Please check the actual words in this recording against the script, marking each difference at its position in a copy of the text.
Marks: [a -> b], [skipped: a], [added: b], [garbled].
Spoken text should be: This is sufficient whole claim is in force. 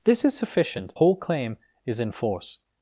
This is sufficient whole claim is in force.